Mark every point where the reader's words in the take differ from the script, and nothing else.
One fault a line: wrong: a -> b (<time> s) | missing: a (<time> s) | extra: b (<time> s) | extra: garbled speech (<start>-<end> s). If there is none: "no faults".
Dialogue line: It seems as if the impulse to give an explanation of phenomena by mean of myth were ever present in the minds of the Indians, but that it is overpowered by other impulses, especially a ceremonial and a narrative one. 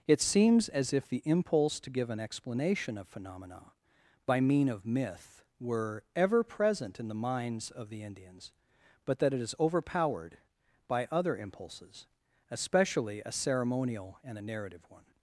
no faults